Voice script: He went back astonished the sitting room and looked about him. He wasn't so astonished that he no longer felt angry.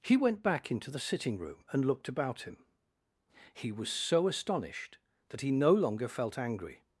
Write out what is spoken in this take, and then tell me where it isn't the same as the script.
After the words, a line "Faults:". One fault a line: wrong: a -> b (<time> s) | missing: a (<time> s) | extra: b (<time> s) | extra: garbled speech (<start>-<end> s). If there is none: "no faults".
He went back into the sitting room and looked about him. He was so astonished that he no longer felt angry.
Faults:
wrong: astonished -> into (0.7 s)
wrong: wasn't -> was (3.7 s)